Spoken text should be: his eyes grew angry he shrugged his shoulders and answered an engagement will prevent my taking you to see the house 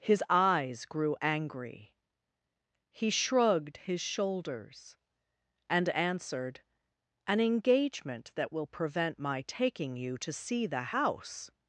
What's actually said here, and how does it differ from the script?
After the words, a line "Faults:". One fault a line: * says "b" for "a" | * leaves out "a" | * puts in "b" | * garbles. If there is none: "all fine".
his eyes grew angry he shrugged his shoulders and answered an engagement that will prevent my taking you to see the house
Faults:
* puts in "that"